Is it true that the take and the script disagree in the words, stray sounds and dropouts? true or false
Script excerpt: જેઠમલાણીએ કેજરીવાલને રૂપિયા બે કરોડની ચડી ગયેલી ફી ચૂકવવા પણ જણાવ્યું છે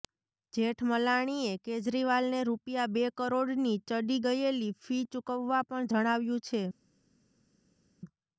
false